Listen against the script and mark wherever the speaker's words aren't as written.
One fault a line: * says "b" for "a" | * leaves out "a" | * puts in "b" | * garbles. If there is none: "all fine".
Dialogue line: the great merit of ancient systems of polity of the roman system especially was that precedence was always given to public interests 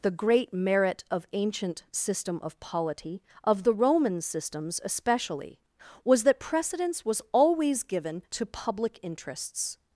* says "system" for "systems"
* says "systems" for "system"